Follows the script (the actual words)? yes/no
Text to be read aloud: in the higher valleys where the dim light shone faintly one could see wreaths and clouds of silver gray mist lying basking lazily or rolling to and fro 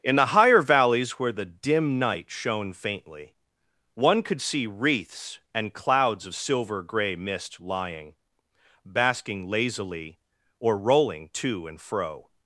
no